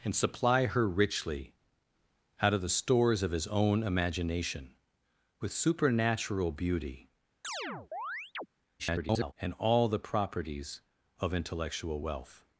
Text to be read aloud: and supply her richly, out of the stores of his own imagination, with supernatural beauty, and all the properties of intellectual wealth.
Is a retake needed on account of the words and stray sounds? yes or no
yes